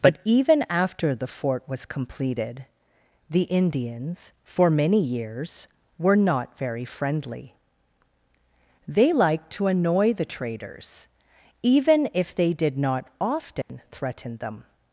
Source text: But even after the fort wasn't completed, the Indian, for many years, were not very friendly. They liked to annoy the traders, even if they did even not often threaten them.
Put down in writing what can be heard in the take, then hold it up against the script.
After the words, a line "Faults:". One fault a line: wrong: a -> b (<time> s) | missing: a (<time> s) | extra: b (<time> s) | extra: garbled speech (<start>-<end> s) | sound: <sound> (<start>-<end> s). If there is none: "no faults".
But even after the fort was completed, the Indians, for many years, were not very friendly. They liked to annoy the traders, even if they did not often threaten them.
Faults:
wrong: wasn't -> was (1.7 s)
wrong: Indian -> Indians (3.4 s)
missing: even (12.8 s)
sound: dropout (13.6-13.7 s)